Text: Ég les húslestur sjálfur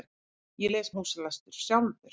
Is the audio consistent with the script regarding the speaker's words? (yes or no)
yes